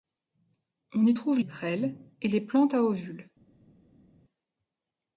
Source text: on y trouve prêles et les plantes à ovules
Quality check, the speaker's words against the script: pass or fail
pass